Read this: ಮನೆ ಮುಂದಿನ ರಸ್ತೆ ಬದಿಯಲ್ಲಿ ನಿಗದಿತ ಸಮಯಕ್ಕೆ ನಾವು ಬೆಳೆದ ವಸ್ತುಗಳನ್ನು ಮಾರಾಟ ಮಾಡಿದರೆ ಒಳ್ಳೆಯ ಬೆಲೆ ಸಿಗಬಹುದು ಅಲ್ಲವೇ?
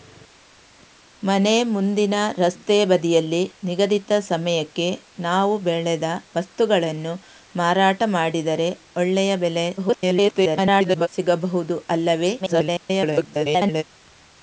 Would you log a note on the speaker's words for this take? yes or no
yes